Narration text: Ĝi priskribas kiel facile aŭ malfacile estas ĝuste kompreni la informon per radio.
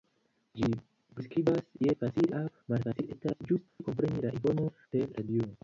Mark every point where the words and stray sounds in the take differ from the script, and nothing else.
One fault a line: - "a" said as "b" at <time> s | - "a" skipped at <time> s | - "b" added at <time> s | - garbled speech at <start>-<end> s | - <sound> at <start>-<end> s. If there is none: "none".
- dropout at 3.7-3.8 s